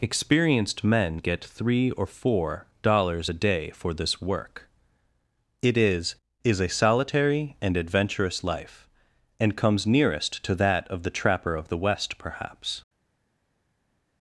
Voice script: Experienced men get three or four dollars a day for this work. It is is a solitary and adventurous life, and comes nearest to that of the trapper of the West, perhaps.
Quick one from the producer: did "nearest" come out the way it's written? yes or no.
yes